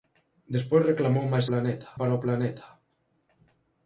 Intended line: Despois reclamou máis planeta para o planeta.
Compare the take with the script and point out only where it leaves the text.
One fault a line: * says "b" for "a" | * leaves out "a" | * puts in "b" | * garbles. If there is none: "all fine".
all fine